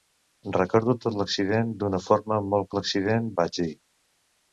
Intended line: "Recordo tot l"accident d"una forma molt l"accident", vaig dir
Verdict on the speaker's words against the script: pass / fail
pass